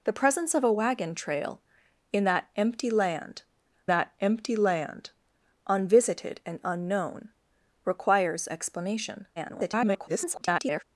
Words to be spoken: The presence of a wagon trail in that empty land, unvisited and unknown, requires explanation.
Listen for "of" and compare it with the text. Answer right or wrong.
right